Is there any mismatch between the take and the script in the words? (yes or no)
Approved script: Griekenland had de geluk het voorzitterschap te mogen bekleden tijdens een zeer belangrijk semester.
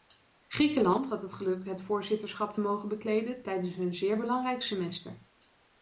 yes